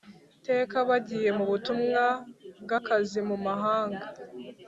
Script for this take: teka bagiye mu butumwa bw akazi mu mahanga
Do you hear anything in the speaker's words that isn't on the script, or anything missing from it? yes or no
no